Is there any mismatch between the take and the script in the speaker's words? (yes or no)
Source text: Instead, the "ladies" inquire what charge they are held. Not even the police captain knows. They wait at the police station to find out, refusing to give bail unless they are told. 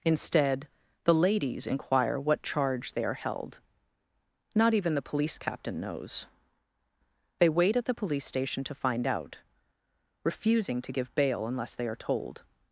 no